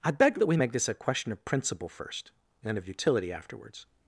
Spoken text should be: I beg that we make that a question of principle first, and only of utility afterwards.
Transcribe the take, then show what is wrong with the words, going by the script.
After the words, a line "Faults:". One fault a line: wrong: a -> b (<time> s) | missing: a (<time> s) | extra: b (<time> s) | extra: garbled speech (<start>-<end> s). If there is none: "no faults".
I beg that we make this a question of principle first, and of utility afterwards.
Faults:
wrong: that -> this (0.7 s)
missing: only (2.8 s)